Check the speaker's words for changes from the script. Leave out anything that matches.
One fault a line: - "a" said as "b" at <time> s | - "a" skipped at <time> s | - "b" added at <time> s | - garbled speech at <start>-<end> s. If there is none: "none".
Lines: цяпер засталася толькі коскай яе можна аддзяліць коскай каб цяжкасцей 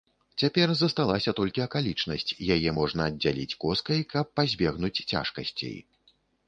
- "коскай" said as "акалічнасць" at 1.7 s
- "пазбегнуць" added at 4.4 s